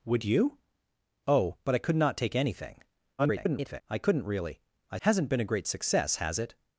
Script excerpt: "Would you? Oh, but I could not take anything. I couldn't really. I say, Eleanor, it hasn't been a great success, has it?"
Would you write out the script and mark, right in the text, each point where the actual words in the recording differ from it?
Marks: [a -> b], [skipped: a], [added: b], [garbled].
"Would you? Oh, but I could not take anything. [garbled] I couldn't really. I [skipped: say, Eleanor, it] hasn't been a great success, has it?"